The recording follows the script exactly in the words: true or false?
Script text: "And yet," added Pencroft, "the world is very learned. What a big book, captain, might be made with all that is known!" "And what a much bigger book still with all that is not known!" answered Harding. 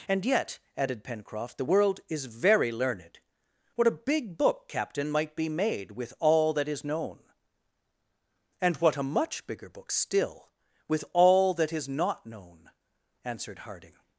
true